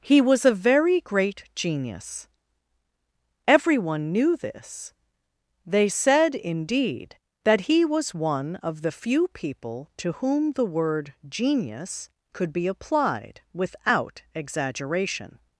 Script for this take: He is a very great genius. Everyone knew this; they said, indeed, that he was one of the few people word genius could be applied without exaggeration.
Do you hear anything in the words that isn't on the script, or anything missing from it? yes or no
yes